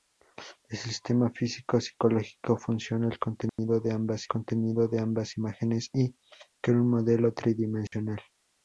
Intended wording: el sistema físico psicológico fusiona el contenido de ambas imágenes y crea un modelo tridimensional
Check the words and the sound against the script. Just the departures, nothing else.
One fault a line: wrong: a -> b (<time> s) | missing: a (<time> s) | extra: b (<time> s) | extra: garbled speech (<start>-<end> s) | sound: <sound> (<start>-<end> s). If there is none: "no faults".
sound: dropout (3.5-3.6 s)
extra: contenido de ambas (4.3 s)
sound: dropout (7.9-7.9 s)